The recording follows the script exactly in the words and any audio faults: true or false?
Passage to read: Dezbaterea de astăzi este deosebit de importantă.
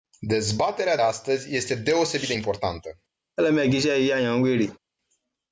false